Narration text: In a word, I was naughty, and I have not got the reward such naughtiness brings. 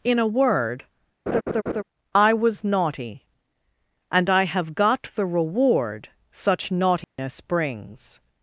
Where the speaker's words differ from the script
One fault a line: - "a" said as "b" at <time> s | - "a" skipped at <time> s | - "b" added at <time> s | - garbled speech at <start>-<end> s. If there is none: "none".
- "not" skipped at 4.7 s